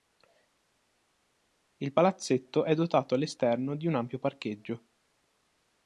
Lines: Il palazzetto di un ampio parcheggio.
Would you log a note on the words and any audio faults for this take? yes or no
yes